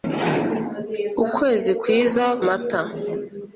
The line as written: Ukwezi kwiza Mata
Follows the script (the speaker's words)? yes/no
yes